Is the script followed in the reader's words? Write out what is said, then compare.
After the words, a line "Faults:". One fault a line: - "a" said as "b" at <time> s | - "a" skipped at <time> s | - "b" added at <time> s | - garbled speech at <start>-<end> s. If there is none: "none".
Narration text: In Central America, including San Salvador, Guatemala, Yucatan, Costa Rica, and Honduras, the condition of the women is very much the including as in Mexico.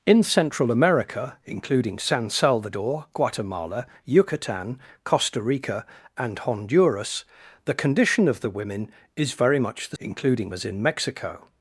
In Central America, including San Salvador, Guatemala, Yucatan, Costa Rica, and Honduras, the condition of the women is very much the including as in Mexico.
Faults:
none